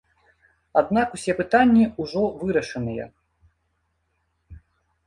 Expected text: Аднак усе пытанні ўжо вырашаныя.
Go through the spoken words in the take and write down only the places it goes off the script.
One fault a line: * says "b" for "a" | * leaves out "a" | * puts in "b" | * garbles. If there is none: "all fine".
all fine